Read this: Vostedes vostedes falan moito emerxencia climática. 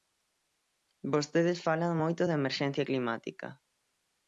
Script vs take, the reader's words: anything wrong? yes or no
yes